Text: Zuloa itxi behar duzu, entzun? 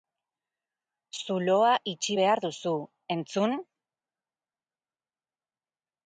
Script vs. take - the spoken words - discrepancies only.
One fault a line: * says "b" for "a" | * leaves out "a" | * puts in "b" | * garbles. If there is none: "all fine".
all fine